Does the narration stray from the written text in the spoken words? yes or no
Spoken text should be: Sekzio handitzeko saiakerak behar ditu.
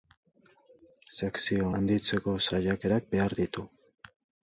no